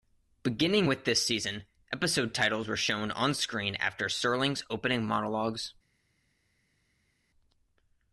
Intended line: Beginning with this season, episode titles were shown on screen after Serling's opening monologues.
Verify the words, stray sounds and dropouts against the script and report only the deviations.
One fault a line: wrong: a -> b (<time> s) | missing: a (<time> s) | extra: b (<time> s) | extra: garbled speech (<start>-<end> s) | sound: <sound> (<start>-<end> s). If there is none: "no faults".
no faults